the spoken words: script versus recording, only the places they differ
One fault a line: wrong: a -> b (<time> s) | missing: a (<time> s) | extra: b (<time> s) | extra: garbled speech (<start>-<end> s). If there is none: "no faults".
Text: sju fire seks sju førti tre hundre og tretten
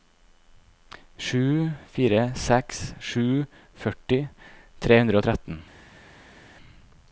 no faults